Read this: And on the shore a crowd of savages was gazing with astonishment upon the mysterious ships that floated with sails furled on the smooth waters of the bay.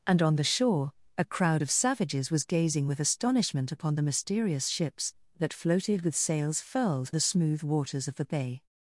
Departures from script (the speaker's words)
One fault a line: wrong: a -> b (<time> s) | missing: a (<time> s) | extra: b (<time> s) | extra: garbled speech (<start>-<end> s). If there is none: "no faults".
missing: on (7.1 s)